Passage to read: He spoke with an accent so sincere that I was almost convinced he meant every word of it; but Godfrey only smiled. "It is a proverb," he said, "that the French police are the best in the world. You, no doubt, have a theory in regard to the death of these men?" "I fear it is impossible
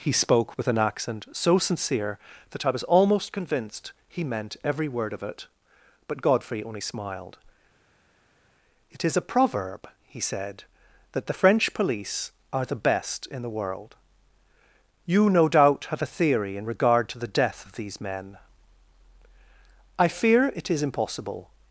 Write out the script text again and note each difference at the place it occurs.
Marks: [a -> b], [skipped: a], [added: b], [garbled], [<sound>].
He spoke with an accent so sincere that I was almost convinced he meant every word of it; but Godfrey only smiled. "It is a proverb," he said, "that the French police are the best in the world. You, no doubt, have a theory in regard to the death of these men?" "I fear it is impossible